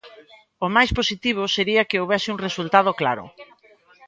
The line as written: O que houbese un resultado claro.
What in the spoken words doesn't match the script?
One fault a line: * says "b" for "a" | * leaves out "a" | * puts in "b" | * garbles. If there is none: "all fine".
* puts in "máis positivo sería"